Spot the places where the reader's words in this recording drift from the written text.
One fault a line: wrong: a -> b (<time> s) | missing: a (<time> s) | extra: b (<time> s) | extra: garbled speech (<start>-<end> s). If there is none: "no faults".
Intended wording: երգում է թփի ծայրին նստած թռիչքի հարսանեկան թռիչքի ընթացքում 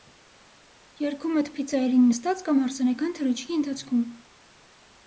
wrong: թռիչքի -> կամ (2.5 s)